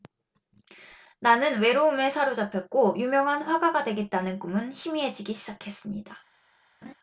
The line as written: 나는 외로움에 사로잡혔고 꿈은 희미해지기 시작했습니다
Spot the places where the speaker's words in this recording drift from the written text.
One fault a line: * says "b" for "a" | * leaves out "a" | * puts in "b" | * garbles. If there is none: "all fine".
* puts in "유명한 화가가 되겠다는"